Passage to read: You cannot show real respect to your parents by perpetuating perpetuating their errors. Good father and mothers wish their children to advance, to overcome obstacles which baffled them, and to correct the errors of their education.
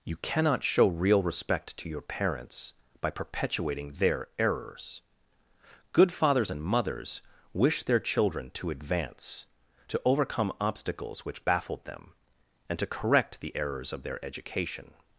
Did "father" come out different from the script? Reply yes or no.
yes